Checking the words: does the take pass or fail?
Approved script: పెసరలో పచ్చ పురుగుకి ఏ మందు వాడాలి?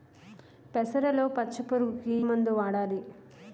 fail